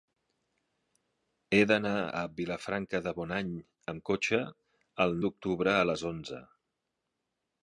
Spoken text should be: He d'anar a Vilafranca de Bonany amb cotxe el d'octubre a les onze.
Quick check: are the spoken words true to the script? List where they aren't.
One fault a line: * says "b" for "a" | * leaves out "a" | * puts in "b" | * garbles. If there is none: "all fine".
all fine